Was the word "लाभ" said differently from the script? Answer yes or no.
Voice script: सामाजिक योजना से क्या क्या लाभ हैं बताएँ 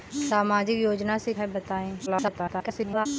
yes